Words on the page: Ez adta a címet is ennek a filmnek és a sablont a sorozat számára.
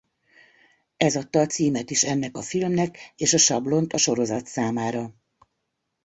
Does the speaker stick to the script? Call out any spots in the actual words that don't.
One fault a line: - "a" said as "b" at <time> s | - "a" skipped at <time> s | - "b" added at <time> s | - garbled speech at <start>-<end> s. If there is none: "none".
none